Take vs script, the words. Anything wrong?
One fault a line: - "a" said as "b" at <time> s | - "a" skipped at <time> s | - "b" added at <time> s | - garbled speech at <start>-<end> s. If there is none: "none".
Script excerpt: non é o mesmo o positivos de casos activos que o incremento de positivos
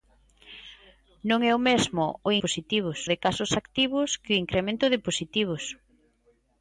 none